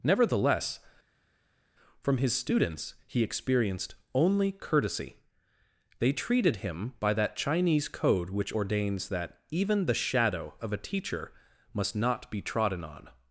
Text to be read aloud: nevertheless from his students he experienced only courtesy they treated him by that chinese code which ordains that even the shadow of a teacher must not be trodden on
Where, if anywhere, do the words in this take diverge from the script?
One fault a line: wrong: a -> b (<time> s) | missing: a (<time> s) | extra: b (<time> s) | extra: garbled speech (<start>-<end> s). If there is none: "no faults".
no faults